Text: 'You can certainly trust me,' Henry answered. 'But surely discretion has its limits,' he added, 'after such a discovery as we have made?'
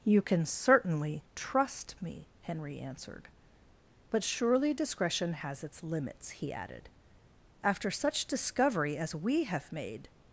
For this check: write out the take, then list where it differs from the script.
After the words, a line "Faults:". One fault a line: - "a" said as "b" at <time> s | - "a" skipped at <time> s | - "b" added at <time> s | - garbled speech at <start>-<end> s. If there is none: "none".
'You can certainly trust me,' Henry answered. 'But surely discretion has its limits,' he added, 'after such discovery as we have made?'
Faults:
- "a" skipped at 8.3 s